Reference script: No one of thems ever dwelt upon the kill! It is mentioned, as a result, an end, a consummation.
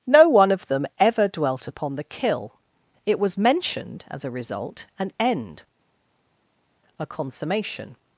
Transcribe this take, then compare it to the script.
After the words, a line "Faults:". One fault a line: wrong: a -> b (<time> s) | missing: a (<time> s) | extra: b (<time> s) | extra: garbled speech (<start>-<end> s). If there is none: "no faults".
No one of them ever dwelt upon the kill! It was mentioned, as a result, an end, a consummation.
Faults:
wrong: thems -> them (0.7 s)
wrong: is -> was (3.2 s)